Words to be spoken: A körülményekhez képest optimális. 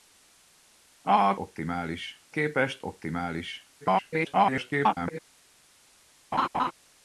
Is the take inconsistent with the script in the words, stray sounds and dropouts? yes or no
yes